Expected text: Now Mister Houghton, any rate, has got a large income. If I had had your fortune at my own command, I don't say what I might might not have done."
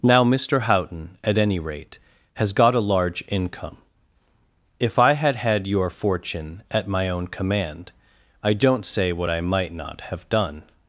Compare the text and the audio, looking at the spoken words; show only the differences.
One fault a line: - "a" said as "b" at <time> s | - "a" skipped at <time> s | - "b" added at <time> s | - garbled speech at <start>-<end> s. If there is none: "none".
- "at" added at 1.2 s
- "might" skipped at 9.7 s